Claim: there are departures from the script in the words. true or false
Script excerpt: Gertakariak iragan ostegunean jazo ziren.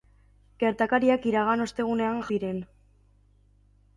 true